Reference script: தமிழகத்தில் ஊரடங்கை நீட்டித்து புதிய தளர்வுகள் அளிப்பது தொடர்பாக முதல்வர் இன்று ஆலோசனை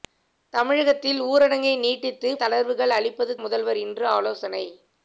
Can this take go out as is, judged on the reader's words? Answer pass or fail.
fail